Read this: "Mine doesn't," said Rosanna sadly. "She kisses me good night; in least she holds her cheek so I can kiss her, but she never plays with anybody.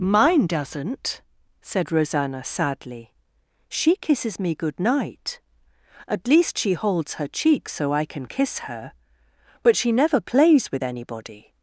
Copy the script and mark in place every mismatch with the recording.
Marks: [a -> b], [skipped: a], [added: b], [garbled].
"Mine doesn't," said Rosanna sadly. "She kisses me good night; [in -> at] least she holds her cheek so I can kiss her, but she never plays with anybody.